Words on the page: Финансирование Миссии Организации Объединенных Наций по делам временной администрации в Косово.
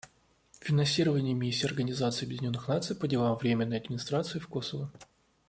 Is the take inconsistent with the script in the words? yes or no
no